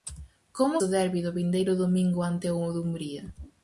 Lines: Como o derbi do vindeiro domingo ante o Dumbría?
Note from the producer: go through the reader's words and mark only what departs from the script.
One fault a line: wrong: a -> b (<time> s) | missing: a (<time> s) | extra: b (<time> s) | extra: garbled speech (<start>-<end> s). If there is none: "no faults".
no faults